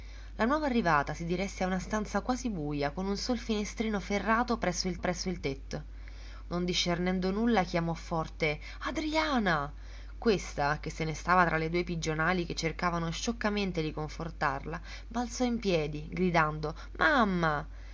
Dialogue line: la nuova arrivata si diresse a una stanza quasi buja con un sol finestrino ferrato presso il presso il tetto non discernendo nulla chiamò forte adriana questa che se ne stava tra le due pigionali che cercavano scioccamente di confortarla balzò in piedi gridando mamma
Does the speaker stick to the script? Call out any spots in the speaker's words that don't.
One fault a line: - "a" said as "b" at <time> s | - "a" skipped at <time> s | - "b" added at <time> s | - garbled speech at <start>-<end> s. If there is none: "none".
none